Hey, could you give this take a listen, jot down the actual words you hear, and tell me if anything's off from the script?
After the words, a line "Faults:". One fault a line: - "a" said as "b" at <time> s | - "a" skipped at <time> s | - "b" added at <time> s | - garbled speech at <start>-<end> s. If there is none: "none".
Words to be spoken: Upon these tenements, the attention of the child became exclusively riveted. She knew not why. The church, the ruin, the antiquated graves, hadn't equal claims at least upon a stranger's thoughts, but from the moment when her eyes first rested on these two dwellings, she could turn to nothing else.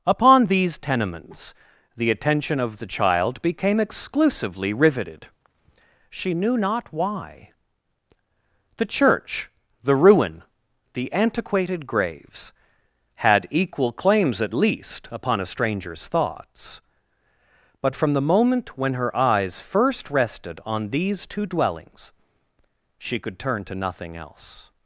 Upon these tenements, the attention of the child became exclusively riveted. She knew not why. The church, the ruin, the antiquated graves, had equal claims at least upon a stranger's thoughts, but from the moment when her eyes first rested on these two dwellings, she could turn to nothing else.
Faults:
- "hadn't" said as "had" at 13.2 s